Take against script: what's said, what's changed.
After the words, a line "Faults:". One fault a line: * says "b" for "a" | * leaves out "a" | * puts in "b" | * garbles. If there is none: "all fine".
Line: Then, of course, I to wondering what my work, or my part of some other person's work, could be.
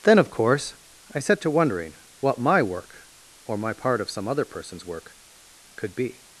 Then, of course, I set to wondering what my work, or my part of some other person's work, could be.
Faults:
* puts in "set"